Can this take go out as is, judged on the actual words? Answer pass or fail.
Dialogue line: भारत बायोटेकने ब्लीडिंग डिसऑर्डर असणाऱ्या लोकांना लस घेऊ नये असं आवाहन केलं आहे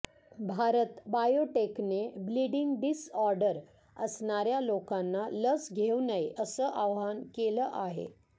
pass